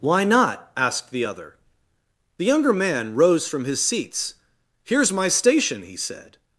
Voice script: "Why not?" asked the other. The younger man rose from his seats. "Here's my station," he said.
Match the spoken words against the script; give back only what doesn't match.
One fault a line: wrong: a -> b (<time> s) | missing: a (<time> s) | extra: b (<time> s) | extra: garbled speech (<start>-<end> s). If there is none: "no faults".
no faults